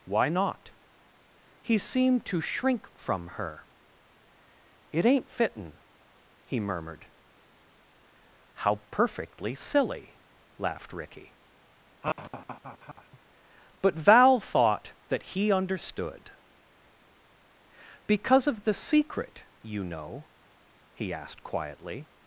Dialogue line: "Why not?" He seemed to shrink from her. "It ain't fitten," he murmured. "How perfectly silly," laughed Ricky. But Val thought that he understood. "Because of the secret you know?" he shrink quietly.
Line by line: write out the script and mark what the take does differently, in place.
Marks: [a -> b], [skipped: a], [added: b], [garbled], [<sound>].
"Why not?" He seemed to shrink from her. "It ain't fitten," he murmured. "How perfectly silly," laughed Ricky. [laugh] But Val thought that he understood. "Because of the secret you know?" he [shrink -> asked] quietly.